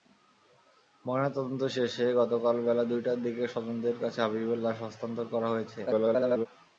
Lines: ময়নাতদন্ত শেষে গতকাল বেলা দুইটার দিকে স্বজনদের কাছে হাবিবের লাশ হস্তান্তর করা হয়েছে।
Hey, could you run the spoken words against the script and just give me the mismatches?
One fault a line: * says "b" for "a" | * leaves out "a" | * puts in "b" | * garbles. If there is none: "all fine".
* garbles